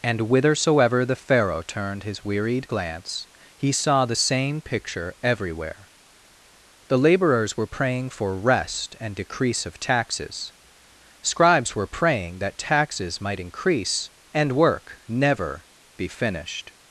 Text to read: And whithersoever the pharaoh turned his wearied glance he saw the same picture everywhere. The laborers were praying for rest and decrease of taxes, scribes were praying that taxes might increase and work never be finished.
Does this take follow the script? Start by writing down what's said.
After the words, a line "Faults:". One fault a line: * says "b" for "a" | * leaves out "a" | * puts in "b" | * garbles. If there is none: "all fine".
And whithersoever the pharaoh turned his wearied glance he saw the same picture everywhere. The laborers were praying for rest and decrease of taxes, scribes were praying that taxes might increase and work never be finished.
Faults:
all fine